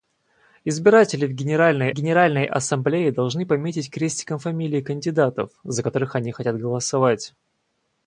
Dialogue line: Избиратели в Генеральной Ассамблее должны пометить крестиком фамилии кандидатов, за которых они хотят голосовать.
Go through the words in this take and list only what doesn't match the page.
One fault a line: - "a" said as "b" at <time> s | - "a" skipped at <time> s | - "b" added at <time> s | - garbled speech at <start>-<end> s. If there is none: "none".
- "Генеральной" added at 1.9 s